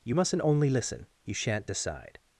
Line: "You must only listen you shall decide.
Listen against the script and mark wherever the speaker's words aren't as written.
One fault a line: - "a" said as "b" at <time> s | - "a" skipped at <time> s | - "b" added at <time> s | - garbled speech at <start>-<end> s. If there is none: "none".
- "must" said as "mustn't" at 0.1 s
- "shall" said as "shan't" at 1.3 s